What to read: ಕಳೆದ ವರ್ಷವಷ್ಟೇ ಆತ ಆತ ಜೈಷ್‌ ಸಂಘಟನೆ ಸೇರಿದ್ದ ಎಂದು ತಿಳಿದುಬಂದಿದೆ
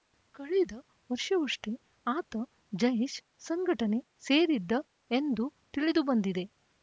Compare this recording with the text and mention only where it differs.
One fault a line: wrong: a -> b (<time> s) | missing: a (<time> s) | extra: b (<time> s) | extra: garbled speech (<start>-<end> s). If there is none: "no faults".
missing: ಆತ (2.3 s)